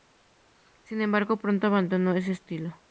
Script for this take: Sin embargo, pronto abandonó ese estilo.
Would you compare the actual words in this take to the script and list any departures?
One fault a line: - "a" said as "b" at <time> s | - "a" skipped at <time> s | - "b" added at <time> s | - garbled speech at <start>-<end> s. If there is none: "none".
none